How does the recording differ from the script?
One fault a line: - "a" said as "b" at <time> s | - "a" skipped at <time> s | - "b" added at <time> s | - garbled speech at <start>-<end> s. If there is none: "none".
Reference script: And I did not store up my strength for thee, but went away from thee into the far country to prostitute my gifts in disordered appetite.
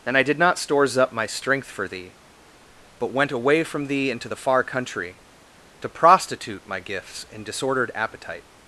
- "store" said as "stores" at 0.6 s